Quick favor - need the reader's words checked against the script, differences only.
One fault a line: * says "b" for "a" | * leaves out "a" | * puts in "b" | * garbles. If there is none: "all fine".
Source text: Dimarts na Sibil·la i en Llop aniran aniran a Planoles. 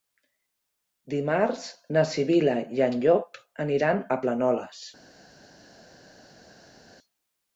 * leaves out "aniran"